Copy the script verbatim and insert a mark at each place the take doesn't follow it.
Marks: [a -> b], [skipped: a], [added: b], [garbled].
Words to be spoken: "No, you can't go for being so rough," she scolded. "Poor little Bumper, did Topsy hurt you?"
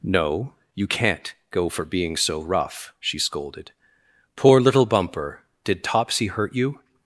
"No, you can't go for being so rough," she scolded. "Poor little Bumper, did Topsy hurt you?"